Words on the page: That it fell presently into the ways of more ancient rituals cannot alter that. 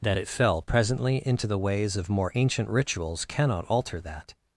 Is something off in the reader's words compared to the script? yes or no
no